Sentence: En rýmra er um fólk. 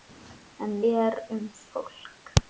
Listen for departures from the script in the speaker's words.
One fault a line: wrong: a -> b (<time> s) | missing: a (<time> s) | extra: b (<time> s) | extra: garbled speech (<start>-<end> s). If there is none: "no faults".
missing: rýmra (0.7 s)